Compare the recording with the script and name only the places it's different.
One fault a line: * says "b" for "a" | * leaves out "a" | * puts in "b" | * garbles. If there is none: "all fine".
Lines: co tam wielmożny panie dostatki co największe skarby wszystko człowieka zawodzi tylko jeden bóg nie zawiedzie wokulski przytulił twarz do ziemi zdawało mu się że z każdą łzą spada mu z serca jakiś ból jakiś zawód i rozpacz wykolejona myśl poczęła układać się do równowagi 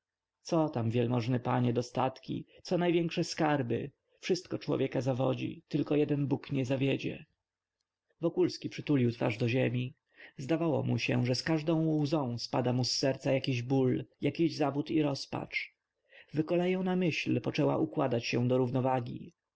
all fine